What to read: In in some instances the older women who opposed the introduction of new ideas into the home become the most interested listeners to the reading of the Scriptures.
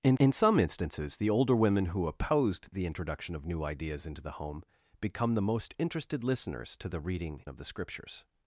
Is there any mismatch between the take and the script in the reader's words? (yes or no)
no